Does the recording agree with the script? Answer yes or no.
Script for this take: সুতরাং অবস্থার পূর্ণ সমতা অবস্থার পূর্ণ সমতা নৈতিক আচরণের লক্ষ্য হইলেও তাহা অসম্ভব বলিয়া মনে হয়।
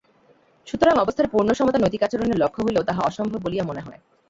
no